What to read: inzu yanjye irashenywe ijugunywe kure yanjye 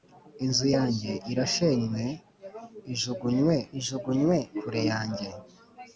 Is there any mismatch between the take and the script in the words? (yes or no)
yes